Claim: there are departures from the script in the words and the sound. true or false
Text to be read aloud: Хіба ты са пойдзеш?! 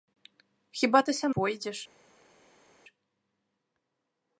false